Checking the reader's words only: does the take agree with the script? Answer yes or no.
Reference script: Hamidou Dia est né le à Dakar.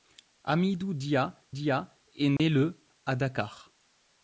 no